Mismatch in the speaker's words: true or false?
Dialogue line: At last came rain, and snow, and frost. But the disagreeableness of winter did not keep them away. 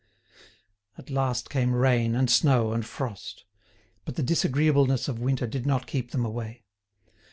false